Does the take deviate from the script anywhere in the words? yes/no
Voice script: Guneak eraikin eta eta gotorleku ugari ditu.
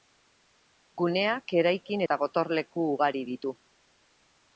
yes